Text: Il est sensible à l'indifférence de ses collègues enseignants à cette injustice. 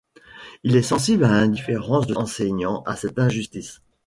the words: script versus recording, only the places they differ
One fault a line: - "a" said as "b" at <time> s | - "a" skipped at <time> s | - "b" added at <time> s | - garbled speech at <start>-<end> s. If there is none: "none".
- "ses collègues" skipped at 2.2 s